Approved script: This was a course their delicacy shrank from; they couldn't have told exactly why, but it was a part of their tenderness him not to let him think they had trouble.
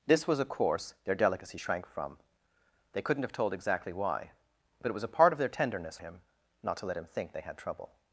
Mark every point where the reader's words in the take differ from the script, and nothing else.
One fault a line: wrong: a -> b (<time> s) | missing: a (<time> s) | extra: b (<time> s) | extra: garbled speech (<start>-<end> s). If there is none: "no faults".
no faults